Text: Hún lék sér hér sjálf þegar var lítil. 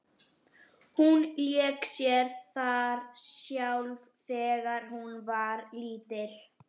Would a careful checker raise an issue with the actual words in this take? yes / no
yes